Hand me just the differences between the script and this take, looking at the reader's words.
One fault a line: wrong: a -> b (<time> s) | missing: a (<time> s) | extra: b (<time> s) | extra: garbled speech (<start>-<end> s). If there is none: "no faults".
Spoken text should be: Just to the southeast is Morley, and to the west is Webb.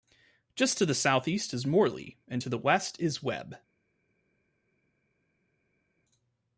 no faults